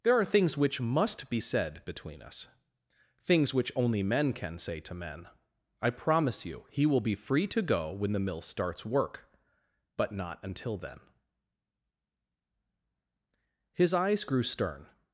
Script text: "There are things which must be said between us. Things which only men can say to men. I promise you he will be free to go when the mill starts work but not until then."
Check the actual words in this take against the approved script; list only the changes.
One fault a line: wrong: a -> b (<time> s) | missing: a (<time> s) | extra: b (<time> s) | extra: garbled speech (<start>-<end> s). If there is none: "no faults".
extra: His eyes grew stern (13.7 s)